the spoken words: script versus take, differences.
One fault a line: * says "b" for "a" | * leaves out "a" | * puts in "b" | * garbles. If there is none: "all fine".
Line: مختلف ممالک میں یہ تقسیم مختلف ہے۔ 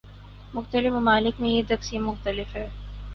all fine